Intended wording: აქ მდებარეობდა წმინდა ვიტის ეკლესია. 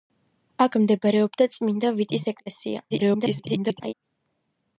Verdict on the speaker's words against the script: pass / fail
fail